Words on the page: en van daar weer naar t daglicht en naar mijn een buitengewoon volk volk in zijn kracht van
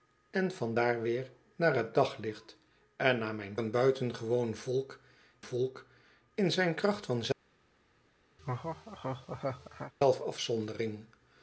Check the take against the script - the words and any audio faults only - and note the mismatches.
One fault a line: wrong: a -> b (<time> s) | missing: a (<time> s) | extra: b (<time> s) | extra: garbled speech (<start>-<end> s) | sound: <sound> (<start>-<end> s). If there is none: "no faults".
sound: laugh (8.4-9.9 s)